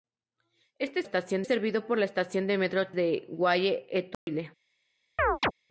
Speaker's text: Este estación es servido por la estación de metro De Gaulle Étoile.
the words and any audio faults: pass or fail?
fail